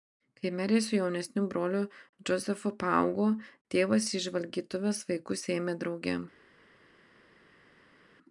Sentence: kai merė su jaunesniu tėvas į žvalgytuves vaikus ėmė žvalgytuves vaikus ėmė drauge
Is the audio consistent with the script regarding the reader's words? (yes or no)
no